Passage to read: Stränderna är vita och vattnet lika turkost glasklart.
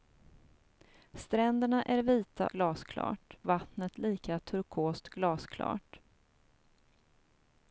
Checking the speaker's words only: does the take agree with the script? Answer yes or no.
no